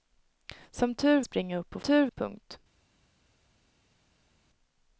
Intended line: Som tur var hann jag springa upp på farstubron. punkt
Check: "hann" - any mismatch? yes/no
yes